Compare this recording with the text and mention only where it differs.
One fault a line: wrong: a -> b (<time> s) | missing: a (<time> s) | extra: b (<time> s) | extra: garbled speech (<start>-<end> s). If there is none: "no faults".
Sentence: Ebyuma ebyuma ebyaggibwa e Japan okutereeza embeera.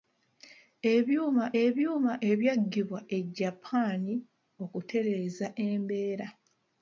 no faults